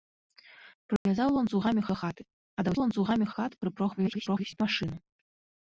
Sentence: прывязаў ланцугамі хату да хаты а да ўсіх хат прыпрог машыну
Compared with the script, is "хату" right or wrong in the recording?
wrong